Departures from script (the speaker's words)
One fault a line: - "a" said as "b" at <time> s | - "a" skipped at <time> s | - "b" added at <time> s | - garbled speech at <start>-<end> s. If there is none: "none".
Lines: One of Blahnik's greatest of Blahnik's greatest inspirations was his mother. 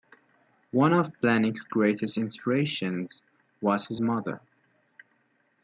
- "of Blahnik's greatest" skipped at 2.2 s